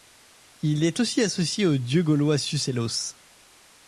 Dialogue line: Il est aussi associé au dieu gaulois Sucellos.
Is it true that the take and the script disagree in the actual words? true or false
false